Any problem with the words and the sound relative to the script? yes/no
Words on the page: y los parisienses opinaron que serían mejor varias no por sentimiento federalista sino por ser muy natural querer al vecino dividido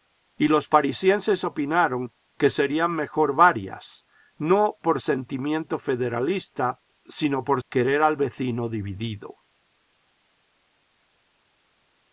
yes